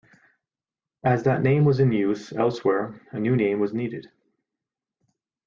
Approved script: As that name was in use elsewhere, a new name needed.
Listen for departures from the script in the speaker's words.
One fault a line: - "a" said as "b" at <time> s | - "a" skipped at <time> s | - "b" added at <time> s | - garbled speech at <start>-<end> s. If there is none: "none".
- "was" added at 3.6 s